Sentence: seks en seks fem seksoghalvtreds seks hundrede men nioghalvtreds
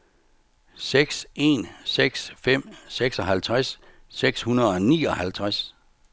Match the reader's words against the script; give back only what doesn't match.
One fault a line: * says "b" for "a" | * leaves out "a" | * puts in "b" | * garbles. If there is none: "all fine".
* says "og" for "men"